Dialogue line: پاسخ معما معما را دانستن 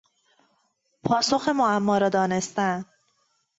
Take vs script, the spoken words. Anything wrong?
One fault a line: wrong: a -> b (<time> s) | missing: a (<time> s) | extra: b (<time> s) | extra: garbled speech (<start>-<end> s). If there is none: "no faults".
missing: معما (2.0 s)